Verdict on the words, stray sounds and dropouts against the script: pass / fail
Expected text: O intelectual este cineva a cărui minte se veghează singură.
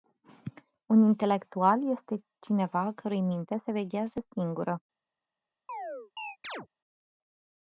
fail